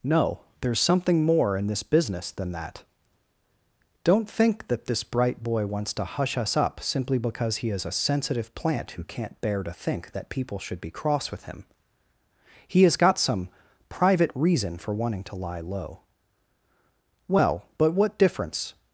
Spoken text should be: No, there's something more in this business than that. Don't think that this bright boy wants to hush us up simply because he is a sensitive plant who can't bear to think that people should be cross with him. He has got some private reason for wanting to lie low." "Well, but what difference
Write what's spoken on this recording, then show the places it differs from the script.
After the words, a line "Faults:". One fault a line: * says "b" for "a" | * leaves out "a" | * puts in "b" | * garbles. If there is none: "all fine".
No, there's something more in this business than that. Don't think that this bright boy wants to hush us up simply because he is a sensitive plant who can't bear to think that people should be cross with him. He has got some private reason for wanting to lie low." "Well, but what difference
Faults:
all fine